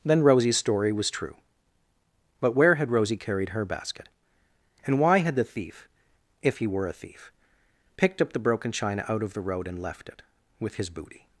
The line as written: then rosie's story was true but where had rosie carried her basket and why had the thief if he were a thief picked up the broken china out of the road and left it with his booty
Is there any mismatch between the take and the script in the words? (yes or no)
no